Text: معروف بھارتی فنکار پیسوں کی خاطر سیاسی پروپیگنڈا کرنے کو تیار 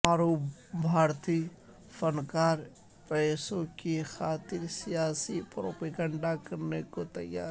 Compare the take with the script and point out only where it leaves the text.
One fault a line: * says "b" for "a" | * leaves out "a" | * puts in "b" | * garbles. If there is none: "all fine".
all fine